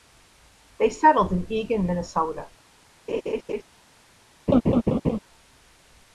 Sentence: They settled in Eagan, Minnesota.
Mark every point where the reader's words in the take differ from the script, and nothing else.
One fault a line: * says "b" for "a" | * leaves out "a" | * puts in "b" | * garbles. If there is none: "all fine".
all fine